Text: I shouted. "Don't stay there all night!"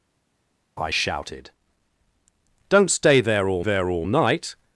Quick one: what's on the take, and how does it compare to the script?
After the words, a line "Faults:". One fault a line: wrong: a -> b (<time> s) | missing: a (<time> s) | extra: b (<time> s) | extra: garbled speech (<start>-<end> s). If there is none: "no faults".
I shouted. "Don't stay there all there all night!"
Faults:
extra: there all (3.6 s)